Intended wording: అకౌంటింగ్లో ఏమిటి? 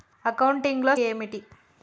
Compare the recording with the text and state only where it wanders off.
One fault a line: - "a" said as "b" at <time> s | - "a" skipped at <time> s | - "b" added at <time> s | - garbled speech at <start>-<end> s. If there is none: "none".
none